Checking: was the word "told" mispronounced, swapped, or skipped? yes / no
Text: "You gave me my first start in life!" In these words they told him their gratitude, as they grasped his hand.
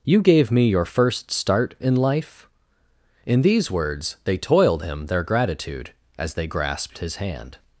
yes